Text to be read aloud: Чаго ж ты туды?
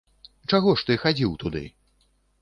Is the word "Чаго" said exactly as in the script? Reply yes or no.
yes